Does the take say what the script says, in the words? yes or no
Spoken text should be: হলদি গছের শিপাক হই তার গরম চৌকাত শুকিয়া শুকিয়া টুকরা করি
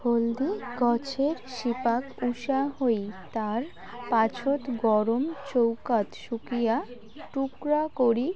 no